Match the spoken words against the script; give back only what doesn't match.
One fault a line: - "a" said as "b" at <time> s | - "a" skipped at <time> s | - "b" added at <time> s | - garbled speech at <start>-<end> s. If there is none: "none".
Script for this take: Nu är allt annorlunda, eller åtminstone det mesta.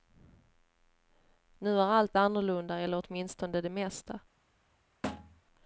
none